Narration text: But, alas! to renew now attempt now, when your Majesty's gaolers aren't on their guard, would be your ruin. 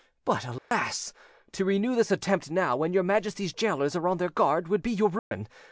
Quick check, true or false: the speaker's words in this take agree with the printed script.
false